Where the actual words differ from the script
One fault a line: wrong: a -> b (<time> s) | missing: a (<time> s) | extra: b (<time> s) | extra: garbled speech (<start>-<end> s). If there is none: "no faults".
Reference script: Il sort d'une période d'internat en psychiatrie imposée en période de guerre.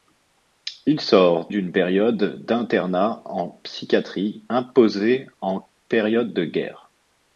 no faults